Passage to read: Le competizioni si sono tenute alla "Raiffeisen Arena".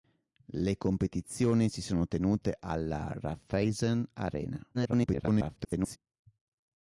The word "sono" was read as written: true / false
true